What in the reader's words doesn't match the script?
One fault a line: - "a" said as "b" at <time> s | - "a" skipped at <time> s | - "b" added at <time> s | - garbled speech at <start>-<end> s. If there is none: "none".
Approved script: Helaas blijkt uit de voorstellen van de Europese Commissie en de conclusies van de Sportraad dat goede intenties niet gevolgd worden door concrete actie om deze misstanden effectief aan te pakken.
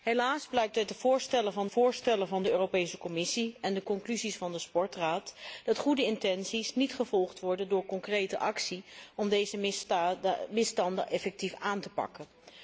- "voorstellen van" added at 1.6 s